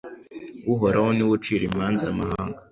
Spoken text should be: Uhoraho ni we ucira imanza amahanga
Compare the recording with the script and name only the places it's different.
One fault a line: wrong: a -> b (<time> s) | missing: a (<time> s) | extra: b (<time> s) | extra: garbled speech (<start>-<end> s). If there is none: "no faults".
no faults